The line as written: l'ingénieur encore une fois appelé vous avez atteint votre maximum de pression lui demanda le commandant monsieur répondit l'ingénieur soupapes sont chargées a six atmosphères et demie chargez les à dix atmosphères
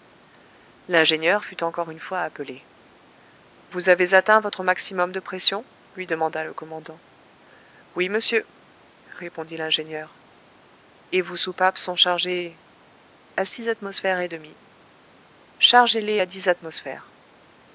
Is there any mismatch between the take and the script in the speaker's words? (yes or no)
yes